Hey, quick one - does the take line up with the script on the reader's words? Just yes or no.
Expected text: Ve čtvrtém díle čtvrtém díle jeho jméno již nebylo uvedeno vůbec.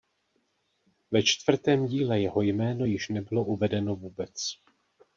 no